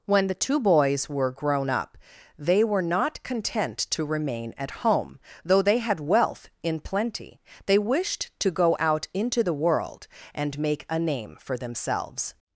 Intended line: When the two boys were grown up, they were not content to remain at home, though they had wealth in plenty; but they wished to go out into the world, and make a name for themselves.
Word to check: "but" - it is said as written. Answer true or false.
false